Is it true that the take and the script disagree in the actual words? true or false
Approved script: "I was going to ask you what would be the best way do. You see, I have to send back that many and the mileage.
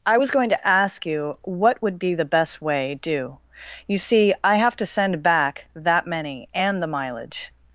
false